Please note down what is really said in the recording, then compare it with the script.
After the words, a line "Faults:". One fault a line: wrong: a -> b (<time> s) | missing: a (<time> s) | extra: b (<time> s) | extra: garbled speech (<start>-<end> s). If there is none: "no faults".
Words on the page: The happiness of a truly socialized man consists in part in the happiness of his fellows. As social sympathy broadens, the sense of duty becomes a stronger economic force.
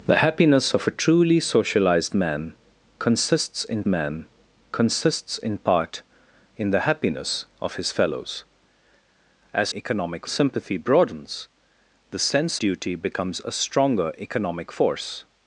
The happiness of a truly socialized man consists in man consists in part in the happiness of his fellows. As economic sympathy broadens, the sense duty becomes a stronger economic force.
Faults:
extra: man consists in (3.9 s)
wrong: social -> economic (9.7 s)
missing: of (12.6 s)